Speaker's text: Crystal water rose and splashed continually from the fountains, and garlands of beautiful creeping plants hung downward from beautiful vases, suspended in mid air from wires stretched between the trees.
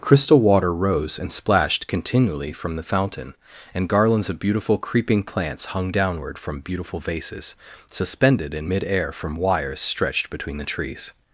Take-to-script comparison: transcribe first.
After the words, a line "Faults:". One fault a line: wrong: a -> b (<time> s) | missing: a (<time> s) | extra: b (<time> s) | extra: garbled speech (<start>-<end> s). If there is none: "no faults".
Crystal water rose and splashed continually from the fountain, and garlands of beautiful creeping plants hung downward from beautiful vases, suspended in mid air from wires stretched between the trees.
Faults:
wrong: fountains -> fountain (2.8 s)